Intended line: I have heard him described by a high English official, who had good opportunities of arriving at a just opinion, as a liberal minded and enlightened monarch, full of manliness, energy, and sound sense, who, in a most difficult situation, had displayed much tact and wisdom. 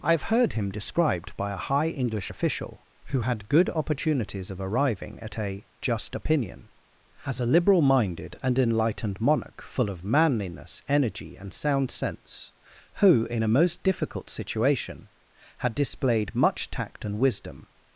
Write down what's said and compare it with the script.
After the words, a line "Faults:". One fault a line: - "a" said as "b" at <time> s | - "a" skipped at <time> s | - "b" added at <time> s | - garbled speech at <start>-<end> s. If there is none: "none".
I have heard him described by a high English official, who had good opportunities of arriving at a just opinion, as a liberal minded and enlightened monarch, full of manliness, energy, and sound sense, who, in a most difficult situation, had displayed much tact and wisdom.
Faults:
none